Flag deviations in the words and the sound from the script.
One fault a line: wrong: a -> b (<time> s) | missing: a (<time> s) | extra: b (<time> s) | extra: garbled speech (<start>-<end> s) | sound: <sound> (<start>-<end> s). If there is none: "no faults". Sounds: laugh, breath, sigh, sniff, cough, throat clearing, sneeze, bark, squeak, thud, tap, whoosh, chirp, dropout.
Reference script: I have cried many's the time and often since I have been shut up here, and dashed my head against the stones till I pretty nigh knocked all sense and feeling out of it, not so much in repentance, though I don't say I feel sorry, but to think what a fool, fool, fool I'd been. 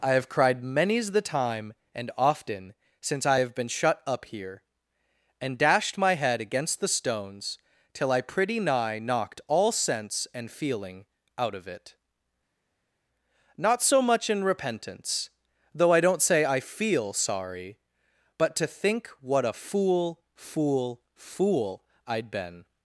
no faults